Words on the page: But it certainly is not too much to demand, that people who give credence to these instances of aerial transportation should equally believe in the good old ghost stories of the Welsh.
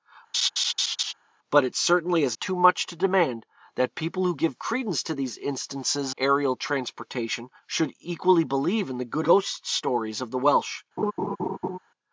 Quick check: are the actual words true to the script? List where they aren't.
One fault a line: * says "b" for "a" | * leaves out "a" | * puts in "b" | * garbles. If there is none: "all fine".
* leaves out "not"
* leaves out "of"
* leaves out "old"